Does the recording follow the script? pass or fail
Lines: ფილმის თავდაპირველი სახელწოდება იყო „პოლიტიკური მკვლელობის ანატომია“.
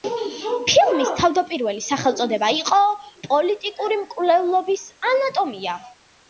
pass